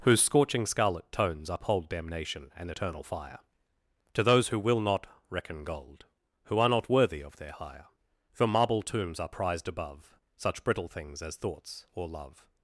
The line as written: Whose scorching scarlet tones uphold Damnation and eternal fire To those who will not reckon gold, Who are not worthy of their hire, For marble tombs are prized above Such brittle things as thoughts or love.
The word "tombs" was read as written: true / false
true